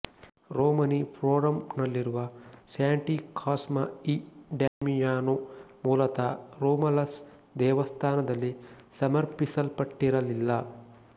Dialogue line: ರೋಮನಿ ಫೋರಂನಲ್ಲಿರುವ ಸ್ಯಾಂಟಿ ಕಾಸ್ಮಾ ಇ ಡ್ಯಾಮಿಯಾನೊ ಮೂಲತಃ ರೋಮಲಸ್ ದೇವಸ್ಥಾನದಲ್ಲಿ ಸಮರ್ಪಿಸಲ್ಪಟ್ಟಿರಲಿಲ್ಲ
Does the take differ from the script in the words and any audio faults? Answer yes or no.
yes